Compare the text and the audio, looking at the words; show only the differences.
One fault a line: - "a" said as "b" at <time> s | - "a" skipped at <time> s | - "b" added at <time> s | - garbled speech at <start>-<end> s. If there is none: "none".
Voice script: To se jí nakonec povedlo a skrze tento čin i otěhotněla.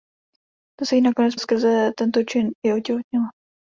- "povedlo" skipped at 1.3 s